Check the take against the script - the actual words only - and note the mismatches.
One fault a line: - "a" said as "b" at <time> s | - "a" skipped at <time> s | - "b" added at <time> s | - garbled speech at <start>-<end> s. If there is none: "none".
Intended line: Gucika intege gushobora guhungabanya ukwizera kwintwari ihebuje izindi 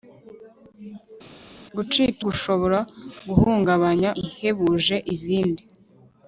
- "intege" skipped at 2.2 s
- "ukwizera kwintwari" skipped at 4.1 s